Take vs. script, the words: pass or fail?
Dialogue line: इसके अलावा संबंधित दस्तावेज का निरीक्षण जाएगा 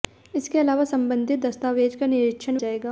pass